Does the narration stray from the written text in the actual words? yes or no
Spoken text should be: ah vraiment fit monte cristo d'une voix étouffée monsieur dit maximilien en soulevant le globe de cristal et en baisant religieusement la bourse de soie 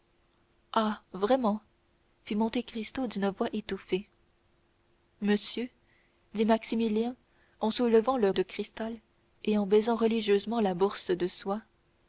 yes